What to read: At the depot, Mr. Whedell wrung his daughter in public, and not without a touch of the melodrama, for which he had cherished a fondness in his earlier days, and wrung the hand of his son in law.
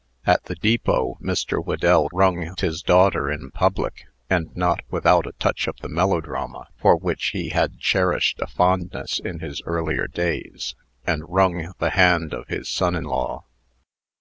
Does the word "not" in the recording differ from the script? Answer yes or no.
no